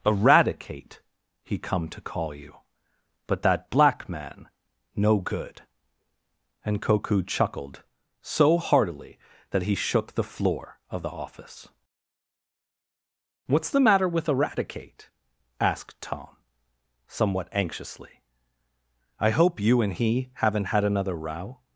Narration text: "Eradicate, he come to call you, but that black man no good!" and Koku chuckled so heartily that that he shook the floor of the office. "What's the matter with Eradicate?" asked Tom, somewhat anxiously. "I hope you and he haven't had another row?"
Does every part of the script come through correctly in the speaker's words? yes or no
no